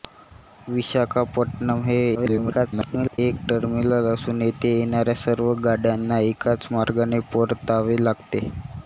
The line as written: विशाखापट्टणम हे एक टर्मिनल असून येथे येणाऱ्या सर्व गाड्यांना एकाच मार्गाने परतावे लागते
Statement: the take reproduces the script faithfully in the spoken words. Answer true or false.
false